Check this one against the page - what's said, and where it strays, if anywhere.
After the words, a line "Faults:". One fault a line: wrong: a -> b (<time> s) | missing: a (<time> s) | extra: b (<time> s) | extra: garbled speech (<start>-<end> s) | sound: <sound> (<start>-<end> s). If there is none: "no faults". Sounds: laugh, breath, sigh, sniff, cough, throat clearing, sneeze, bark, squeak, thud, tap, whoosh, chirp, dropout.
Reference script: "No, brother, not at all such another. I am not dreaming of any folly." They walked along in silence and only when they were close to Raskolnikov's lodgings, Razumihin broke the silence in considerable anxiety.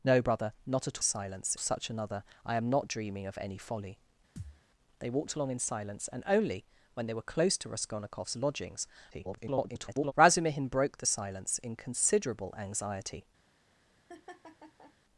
"No, brother, not at silence such another. I am not dreaming of any folly." They walked along in silence and only when they were close to Raskolnikov's lodgings, [garbled] Razumihin broke the silence in considerable anxiety.
Faults:
wrong: all -> silence (1.0 s)
sound: thud (4.4-4.6 s)
extra: garbled speech (9.1-10.1 s)
sound: laugh (14.1-14.9 s)